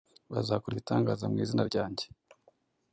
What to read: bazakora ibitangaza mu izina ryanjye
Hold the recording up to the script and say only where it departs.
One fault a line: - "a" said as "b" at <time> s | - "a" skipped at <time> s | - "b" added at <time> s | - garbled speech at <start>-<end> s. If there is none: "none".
none